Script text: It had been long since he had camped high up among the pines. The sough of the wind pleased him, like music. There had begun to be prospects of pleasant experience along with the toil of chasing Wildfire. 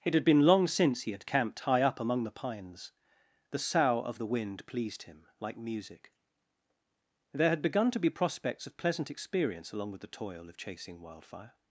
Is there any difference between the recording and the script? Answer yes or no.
no